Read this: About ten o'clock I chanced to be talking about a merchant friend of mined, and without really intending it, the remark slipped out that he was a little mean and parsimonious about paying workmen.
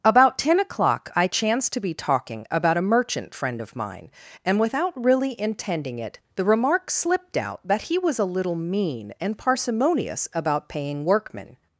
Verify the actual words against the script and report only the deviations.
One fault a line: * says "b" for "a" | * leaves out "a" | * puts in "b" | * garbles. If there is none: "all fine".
* says "mine" for "mined"